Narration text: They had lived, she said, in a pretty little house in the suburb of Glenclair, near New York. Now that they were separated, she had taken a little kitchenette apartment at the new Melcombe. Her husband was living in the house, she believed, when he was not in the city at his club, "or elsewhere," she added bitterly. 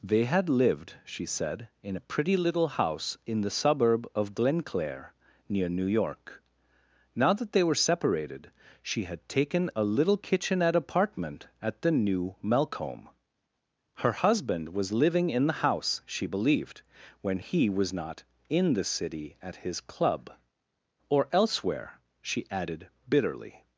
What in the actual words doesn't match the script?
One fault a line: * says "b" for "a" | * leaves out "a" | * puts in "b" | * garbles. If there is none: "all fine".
all fine